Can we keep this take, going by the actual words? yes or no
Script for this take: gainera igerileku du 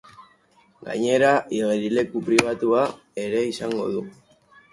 no